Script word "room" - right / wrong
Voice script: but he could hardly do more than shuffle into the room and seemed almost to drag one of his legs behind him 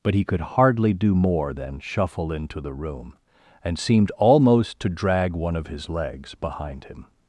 right